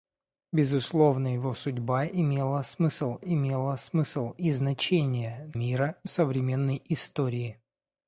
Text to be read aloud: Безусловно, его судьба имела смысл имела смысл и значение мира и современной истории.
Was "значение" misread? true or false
false